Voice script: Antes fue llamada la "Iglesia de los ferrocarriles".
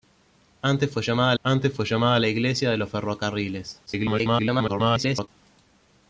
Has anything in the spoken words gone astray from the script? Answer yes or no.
yes